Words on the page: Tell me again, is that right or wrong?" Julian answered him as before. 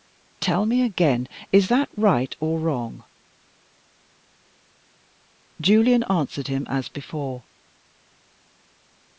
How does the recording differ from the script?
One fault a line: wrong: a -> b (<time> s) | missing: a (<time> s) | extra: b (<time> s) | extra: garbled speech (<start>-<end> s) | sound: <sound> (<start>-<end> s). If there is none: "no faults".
no faults